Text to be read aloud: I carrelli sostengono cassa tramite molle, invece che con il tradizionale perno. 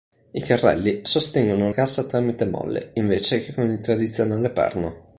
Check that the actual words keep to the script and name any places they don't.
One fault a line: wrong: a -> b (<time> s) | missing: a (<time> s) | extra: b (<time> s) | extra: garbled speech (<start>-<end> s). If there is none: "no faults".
no faults